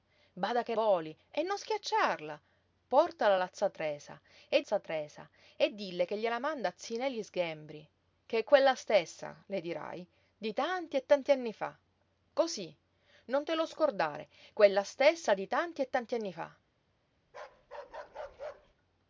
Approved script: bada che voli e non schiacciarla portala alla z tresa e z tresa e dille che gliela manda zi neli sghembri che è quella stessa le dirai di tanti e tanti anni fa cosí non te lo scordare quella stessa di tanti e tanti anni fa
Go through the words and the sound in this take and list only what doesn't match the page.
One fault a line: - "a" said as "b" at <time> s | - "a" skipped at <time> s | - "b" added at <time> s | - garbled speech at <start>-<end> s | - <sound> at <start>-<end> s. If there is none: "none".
- bark at 17.3-18.7 s